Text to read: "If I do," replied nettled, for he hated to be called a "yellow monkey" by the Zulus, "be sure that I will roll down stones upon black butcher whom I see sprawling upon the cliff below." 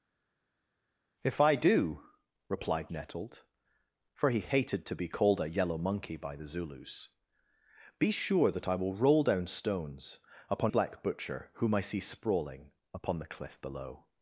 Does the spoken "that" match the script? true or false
true